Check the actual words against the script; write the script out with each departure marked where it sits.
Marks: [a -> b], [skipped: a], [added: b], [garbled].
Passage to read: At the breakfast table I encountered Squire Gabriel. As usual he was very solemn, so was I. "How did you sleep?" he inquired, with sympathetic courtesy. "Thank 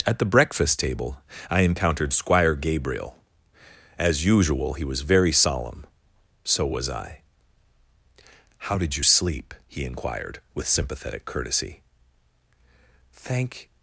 At the breakfast table I encountered Squire Gabriel. As usual he was very solemn, so was I. "How did you sleep?" he inquired, with sympathetic courtesy. "Thank